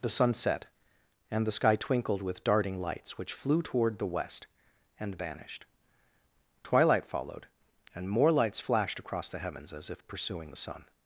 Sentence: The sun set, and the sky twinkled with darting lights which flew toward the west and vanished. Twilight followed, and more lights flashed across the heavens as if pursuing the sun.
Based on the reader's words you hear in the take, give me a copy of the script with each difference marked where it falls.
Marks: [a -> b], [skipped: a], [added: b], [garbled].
The sun set, and the sky twinkled with darting lights which flew toward the west and vanished. Twilight followed, and more lights flashed across the heavens as if pursuing the sun.